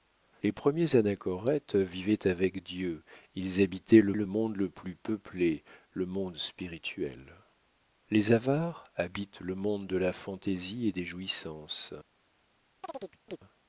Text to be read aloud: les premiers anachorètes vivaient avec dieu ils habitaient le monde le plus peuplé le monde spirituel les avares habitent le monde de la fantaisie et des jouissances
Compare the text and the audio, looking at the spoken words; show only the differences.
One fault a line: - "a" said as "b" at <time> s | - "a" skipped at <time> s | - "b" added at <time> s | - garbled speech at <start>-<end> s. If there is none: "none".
- "le" added at 4.1 s